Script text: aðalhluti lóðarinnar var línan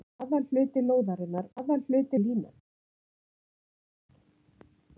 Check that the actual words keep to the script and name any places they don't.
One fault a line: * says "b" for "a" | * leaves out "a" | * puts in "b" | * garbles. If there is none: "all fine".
* says "aðalhluti" for "var"